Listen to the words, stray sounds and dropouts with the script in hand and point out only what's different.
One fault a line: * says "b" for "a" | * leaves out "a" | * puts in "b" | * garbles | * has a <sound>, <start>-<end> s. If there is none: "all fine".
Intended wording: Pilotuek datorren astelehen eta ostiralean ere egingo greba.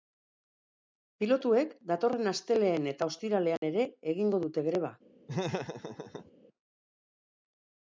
* has a dropout, 3.6-3.6 s
* puts in "dute"
* has a laugh, 5.3-6.3 s